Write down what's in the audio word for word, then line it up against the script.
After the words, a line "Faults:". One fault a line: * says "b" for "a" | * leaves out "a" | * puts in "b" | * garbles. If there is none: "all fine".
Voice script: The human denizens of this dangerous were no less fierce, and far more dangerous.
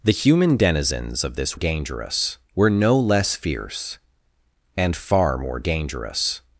The human denizens of this dangerous were no less fierce, and far more dangerous.
Faults:
all fine